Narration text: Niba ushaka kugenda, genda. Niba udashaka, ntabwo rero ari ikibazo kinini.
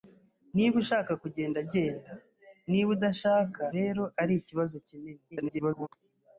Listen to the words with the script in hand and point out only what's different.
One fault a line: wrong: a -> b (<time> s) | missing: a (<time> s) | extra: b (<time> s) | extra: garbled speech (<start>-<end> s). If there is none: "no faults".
missing: ntabwo (3.6 s)
extra: garbled speech (5.3-5.9 s)